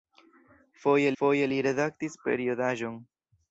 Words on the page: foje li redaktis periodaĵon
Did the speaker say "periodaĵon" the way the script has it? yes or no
yes